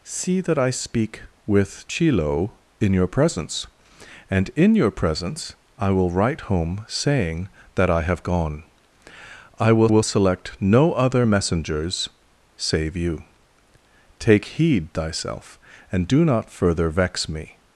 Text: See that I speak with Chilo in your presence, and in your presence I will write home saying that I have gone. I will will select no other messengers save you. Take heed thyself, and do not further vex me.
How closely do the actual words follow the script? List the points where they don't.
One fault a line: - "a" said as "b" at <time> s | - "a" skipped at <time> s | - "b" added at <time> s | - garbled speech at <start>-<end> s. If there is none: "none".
none